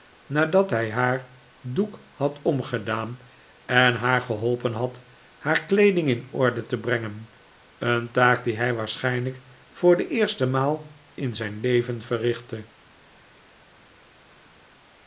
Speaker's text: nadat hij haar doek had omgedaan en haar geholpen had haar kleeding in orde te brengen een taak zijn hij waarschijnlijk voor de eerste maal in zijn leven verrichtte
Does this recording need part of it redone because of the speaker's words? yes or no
yes